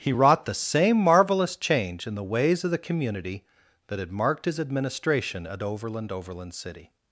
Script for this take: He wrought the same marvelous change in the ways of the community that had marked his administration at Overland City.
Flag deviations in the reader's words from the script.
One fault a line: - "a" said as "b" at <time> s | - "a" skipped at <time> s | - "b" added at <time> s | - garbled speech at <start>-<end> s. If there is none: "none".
- "Overland" added at 6.1 s